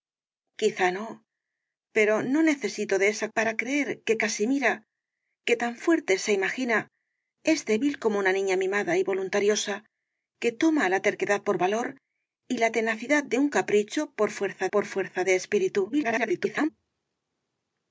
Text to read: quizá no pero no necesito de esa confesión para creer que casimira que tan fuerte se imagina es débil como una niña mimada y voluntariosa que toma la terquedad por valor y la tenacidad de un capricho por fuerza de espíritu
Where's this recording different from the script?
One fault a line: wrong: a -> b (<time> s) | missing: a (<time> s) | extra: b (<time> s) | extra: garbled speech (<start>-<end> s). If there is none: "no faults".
missing: confesión (3.3 s)
extra: por fuerza (14.7 s)
extra: garbled speech (15.9-16.7 s)